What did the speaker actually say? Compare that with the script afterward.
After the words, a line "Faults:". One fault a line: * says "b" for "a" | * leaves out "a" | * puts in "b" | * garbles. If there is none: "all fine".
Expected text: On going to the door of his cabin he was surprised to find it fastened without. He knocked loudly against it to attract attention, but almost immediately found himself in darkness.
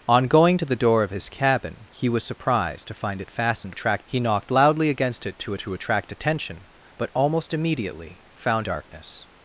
On going to the door of his cabin he was surprised to find it fastened attract. He knocked loudly against it to to attract attention, but almost immediately found darkness.
Faults:
* says "attract" for "without"
* puts in "to"
* leaves out "himself in"